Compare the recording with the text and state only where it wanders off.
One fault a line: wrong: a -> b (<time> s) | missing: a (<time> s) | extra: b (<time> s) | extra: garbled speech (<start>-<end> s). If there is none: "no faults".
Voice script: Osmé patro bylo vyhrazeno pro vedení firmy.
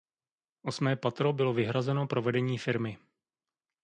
no faults